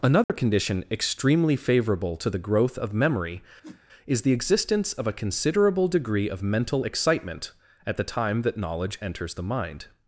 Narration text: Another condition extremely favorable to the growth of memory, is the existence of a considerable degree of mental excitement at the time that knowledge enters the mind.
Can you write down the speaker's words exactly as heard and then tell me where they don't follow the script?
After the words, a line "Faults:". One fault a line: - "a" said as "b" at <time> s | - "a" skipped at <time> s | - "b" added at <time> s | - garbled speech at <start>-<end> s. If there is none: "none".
Another condition extremely favorable to the growth of memory, is the existence of a considerable degree of mental excitement at the time that knowledge enters the mind.
Faults:
none